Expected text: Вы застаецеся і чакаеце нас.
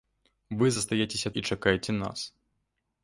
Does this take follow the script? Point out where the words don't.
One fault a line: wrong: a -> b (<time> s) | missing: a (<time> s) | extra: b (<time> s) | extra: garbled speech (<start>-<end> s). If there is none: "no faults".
no faults